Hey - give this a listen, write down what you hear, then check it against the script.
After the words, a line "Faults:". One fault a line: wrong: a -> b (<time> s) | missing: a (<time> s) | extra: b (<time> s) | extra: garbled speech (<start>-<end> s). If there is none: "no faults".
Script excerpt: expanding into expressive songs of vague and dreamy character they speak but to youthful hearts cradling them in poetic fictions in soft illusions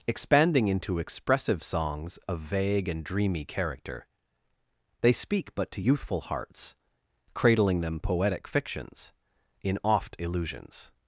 expanding into expressive songs of vague and dreamy character they speak but to youthful hearts cradling them poetic fictions in oft illusions
Faults:
missing: in (8.0 s)
wrong: soft -> oft (9.8 s)